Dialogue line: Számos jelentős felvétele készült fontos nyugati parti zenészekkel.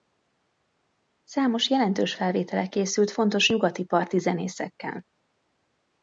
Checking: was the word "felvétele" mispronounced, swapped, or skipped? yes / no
no